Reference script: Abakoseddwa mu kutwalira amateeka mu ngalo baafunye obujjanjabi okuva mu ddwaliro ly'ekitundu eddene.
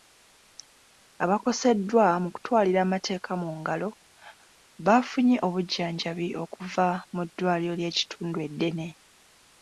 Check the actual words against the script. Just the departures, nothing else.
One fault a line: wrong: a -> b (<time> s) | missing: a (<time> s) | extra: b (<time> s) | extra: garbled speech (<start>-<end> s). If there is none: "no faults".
no faults